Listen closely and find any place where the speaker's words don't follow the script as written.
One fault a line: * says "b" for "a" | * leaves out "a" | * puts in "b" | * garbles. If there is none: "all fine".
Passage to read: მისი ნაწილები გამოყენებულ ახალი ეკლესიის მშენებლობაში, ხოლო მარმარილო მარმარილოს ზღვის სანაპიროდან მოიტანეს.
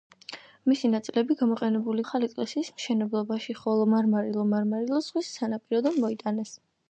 all fine